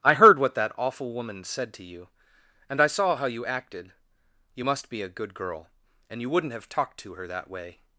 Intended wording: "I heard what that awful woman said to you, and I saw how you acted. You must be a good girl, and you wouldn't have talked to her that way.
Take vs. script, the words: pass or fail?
pass